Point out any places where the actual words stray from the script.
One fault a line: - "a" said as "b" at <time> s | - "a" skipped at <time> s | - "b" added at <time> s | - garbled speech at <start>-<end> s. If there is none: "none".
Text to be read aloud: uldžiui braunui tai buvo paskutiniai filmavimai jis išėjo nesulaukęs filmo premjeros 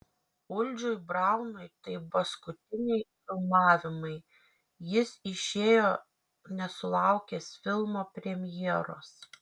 - "buvo" skipped at 2.0 s